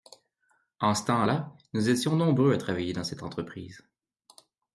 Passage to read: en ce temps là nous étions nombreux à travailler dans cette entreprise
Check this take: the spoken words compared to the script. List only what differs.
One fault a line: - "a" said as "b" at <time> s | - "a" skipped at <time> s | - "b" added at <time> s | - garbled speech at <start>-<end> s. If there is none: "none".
none